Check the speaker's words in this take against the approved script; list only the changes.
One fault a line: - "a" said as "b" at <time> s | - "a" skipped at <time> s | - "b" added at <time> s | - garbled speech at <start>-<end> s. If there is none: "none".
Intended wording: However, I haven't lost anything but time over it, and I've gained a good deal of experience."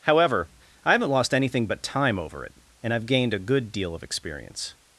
none